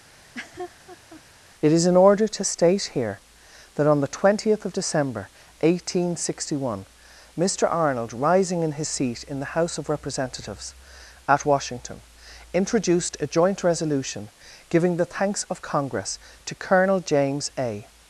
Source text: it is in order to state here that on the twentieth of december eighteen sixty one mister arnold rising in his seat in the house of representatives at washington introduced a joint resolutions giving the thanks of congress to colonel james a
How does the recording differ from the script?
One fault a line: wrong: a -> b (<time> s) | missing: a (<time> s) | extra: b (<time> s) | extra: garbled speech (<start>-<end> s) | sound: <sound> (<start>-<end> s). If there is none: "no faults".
sound: laugh (0.1-1.2 s)
wrong: resolutions -> resolution (13.6 s)